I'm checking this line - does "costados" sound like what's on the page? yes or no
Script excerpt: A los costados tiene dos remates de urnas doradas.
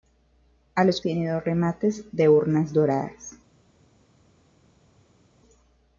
no